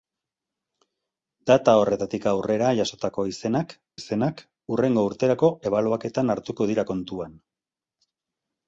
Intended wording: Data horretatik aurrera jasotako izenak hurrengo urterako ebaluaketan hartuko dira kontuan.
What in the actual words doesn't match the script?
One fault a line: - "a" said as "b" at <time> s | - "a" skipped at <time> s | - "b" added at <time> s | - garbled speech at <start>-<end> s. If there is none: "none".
- "izenak" added at 4.0 s